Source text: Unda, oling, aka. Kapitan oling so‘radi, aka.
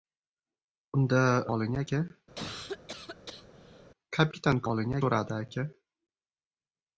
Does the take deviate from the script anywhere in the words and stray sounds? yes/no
yes